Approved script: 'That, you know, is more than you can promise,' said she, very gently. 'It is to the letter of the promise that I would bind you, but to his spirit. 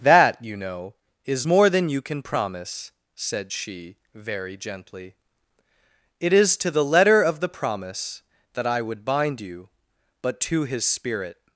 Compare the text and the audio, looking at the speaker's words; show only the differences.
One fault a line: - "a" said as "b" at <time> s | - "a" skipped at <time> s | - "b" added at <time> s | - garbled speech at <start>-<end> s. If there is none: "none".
none